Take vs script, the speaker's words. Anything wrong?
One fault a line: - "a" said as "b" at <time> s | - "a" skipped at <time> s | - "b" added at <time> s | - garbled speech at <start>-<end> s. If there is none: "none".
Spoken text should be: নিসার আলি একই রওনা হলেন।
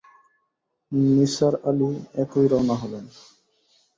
none